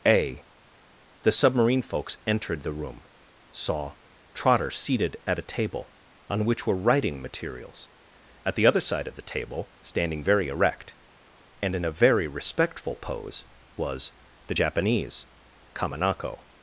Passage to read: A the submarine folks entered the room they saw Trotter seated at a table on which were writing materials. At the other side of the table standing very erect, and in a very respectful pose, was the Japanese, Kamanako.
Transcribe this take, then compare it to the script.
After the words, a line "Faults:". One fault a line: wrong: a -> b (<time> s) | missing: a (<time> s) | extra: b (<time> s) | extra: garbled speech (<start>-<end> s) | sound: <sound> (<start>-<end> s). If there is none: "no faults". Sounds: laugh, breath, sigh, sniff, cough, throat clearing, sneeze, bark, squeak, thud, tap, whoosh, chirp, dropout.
A the submarine folks entered the room saw Trotter seated at a table on which were writing materials. At the other side of the table standing very erect, and in a very respectful pose, was the Japanese, Kamanako.
Faults:
missing: they (3.0 s)